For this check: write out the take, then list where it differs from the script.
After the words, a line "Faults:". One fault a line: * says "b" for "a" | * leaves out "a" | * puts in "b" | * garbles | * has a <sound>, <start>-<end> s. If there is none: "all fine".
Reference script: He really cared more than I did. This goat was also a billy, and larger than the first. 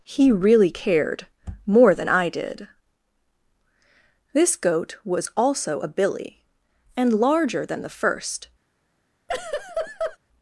He really cared more than I did. This goat was also a billy, and larger than the first.
Faults:
* has a laugh, 9.3-10.2 s